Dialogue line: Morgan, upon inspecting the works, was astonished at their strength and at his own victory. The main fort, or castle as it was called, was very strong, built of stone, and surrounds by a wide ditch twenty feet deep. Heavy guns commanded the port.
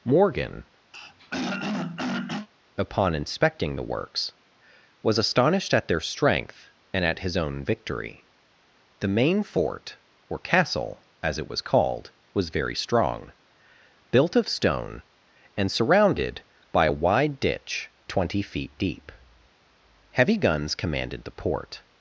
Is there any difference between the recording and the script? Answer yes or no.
yes